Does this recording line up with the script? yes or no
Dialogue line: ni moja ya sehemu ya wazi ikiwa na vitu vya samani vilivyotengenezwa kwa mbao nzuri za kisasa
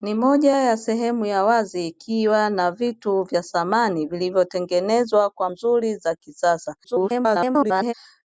no